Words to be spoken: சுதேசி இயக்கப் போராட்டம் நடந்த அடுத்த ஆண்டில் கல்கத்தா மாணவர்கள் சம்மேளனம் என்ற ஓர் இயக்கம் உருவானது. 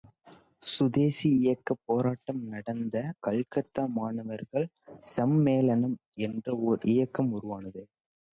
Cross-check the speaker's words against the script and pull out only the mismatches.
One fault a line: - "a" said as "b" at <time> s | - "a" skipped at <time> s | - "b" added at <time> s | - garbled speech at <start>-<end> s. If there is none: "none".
- "அடுத்த ஆண்டில்" skipped at 3.0 s